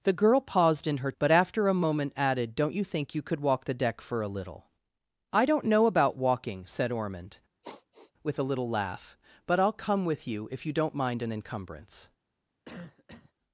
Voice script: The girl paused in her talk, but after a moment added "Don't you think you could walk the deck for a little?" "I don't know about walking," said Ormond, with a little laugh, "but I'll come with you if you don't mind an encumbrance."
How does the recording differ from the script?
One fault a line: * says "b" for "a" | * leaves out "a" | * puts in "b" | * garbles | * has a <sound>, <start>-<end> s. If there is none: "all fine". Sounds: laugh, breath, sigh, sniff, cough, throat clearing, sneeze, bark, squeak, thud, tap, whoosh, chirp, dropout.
* leaves out "talk"
* has a sigh, 7.6-8.1 s
* has a cough, 12.6-13.3 s